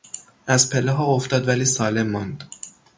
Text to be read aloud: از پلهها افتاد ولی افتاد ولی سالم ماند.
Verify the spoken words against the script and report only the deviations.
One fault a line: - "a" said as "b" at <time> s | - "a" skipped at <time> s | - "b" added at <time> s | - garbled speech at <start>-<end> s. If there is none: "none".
- "افتاد ولی" skipped at 1.6 s